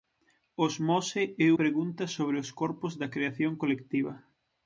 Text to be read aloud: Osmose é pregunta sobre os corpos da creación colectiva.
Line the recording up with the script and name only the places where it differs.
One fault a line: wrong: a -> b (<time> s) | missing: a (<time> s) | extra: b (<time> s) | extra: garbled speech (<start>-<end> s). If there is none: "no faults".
no faults